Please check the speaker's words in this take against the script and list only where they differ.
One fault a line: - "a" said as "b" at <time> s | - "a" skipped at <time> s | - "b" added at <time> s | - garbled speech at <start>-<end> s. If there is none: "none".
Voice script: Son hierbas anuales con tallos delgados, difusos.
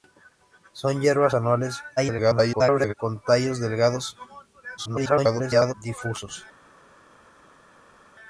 - garbled speech at 2.0-2.9 s
- garbled speech at 4.8-5.7 s